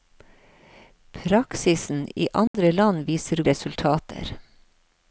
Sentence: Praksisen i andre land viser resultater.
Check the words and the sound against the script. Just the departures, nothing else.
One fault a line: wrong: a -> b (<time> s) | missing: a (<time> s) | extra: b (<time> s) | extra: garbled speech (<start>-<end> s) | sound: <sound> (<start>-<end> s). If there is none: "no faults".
sound: dropout (2.5-2.5 s)